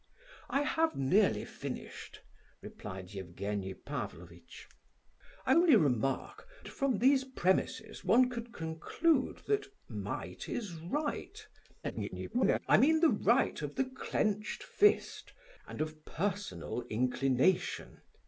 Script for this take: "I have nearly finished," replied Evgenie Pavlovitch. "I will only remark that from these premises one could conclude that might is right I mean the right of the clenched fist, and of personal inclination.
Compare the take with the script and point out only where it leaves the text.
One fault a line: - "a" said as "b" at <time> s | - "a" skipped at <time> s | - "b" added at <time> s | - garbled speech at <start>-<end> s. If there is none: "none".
- "will" skipped at 5.5 s
- "that" skipped at 6.5 s
- garbled speech at 11.8-12.6 s